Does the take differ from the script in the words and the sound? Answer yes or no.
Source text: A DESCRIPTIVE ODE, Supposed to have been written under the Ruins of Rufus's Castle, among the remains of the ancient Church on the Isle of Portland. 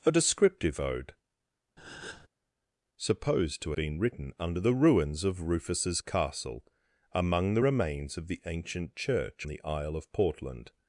yes